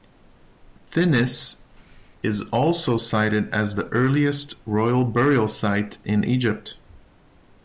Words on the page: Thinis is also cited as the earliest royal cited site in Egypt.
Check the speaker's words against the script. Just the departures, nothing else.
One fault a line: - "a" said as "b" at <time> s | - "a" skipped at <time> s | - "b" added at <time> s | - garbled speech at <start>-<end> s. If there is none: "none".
- "cited" said as "burial" at 5.0 s